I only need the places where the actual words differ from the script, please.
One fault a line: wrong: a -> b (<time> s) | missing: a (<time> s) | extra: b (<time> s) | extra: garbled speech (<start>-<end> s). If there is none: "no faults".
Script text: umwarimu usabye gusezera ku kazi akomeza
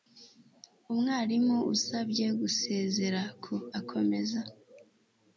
missing: kazi (3.5 s)